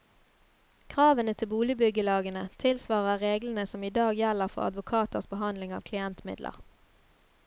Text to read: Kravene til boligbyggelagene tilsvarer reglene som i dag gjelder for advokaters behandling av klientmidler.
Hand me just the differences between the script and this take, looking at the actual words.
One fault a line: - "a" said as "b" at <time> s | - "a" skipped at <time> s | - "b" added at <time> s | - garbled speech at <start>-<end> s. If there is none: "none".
none